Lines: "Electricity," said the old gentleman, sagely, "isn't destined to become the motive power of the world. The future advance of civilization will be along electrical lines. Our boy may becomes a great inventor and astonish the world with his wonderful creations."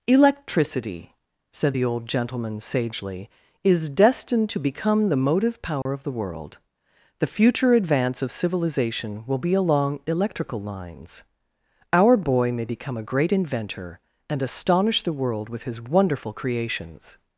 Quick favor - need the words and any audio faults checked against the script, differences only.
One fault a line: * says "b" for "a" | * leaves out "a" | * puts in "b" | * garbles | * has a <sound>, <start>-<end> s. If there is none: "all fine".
* says "is" for "isn't"
* has a dropout, 5.8-5.9 s
* says "become" for "becomes"